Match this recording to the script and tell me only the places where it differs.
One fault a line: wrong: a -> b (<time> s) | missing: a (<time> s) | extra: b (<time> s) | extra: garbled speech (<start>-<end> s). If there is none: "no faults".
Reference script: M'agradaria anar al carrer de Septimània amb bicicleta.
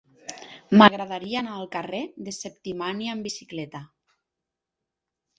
no faults